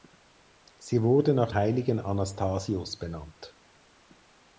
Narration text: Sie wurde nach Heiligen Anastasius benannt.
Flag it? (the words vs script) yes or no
no